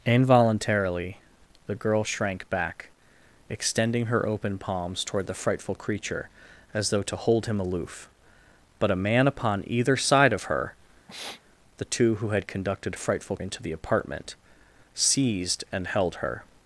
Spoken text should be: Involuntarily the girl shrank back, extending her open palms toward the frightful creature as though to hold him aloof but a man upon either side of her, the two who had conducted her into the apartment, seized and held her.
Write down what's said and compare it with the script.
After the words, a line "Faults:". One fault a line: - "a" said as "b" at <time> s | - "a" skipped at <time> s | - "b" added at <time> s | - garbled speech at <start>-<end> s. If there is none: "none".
Involuntarily the girl shrank back, extending her open palms toward the frightful creature as though to hold him aloof but a man upon either side of her, the two who had conducted frightful into the apartment, seized and held her.
Faults:
- "her" said as "frightful" at 12.9 s